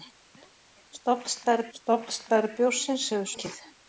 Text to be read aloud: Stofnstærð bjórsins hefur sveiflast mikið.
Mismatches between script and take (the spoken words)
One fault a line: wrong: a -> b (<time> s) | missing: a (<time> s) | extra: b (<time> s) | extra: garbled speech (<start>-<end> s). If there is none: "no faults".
extra: stofnstærð (1.8 s)
missing: sveiflast (3.3 s)